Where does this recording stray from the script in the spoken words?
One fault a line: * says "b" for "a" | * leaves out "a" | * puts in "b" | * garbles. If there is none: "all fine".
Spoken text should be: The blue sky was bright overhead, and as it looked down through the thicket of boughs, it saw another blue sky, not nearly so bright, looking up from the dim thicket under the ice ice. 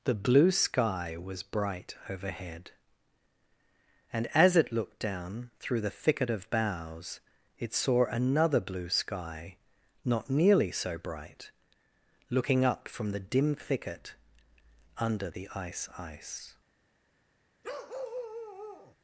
all fine